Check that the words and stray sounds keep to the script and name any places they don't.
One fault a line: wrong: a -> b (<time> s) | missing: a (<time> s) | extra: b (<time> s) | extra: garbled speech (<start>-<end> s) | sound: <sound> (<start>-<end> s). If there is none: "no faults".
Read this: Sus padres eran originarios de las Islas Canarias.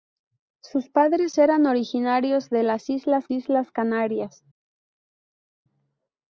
extra: Islas (3.3 s)